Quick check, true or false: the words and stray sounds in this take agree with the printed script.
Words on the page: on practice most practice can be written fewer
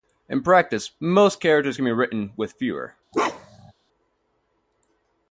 false